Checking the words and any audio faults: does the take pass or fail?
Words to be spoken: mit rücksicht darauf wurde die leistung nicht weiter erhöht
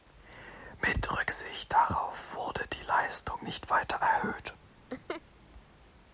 fail